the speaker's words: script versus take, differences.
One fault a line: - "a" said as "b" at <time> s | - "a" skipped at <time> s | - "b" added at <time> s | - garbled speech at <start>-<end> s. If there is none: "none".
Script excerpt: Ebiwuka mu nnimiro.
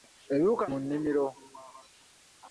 none